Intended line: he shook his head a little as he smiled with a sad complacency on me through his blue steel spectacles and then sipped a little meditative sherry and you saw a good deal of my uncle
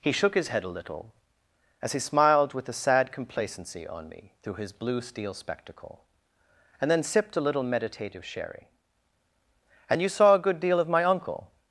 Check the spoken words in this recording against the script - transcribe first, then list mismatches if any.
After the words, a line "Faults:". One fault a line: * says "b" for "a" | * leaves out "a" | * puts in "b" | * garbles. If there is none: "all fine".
he shook his head a little as he smiled with a sad complacency on me through his blue steel spectacle and then sipped a little meditative sherry and you saw a good deal of my uncle
Faults:
* says "spectacle" for "spectacles"